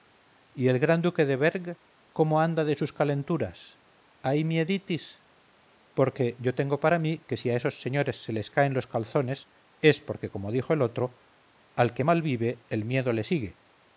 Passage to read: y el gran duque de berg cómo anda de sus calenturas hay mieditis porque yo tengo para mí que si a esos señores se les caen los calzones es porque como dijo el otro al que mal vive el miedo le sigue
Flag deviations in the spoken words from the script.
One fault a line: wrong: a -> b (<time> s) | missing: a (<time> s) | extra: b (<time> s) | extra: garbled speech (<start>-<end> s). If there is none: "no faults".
no faults